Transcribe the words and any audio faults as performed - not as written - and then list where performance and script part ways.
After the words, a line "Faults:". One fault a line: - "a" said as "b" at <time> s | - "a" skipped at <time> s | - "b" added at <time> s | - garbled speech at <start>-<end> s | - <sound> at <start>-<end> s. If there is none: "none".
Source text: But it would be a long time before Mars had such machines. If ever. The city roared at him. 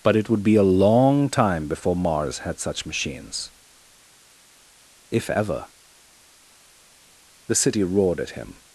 But it would be a long time before Mars had such machines. If ever. The city roared at him.
Faults:
none